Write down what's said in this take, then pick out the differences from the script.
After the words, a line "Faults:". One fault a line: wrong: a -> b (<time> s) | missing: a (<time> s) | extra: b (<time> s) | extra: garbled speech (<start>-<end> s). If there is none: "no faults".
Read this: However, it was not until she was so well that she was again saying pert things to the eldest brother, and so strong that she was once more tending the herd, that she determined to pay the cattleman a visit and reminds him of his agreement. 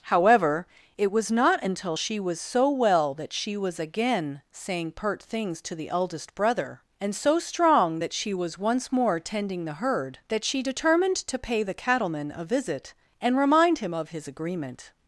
However, it was not until she was so well that she was again saying pert things to the eldest brother, and so strong that she was once more tending the herd, that she determined to pay the cattleman a visit and remind him of his agreement.
Faults:
wrong: reminds -> remind (13.4 s)